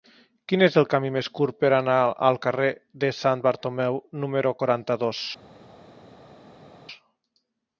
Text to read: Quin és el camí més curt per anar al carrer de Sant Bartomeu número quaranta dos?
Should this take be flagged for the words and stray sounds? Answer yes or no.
no